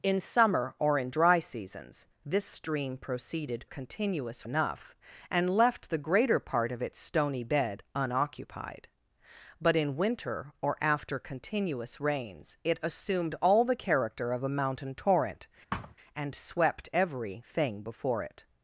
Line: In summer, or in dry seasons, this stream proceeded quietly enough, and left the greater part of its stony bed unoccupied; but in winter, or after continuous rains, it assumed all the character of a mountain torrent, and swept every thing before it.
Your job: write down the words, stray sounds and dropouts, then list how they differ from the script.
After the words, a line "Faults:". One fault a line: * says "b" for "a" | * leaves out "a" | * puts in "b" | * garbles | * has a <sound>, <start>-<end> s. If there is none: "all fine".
In summer, or in dry seasons, this stream proceeded continuous enough, and left the greater part of its stony bed unoccupied; but in winter, or after continuous rains, it assumed all the character of a mountain torrent, and swept every thing before it.
Faults:
* says "continuous" for "quietly"
* has a thud, 15.7-16.0 s